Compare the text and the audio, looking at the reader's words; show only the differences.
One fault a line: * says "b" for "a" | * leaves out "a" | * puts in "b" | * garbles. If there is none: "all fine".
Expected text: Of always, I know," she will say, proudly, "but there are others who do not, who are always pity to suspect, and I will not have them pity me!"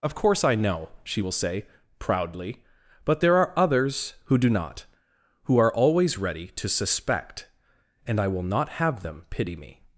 * says "course" for "always"
* says "ready" for "pity"